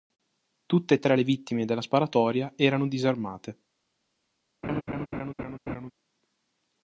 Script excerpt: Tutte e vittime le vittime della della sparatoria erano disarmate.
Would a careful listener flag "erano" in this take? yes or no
no